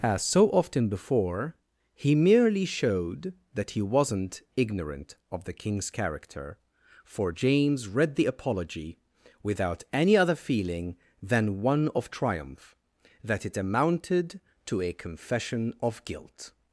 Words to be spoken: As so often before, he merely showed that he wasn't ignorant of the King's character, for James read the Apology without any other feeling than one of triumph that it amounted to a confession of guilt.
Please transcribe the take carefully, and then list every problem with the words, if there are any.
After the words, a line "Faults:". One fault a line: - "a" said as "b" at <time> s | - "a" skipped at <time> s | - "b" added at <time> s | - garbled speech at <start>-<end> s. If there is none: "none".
As so often before, he merely showed that he wasn't ignorant of the King's character, for James read the Apology without any other feeling than one of triumph that it amounted to a confession of guilt.
Faults:
none